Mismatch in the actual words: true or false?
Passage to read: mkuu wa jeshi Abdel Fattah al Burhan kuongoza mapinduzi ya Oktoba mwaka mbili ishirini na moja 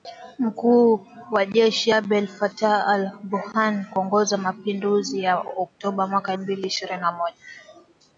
false